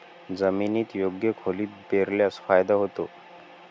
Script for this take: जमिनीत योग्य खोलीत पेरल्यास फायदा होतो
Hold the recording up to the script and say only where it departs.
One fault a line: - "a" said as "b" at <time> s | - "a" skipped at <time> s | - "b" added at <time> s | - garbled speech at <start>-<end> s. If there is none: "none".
none